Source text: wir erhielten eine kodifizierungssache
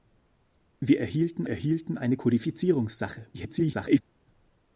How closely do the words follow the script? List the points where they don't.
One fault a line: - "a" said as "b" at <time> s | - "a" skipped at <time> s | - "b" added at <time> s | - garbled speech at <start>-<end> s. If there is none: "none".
- "erhielten" added at 1.5 s
- garbled speech at 3.3-4.0 s